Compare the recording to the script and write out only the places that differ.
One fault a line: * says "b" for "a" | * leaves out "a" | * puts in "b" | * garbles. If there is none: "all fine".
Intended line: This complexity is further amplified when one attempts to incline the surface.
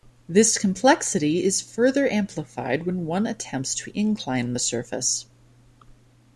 all fine